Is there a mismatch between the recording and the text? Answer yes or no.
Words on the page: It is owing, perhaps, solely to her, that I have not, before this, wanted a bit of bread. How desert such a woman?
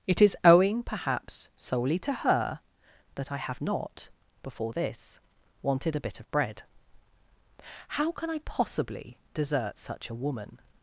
yes